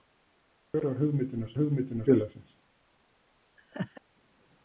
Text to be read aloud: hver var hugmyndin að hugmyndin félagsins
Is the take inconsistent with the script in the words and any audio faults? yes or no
yes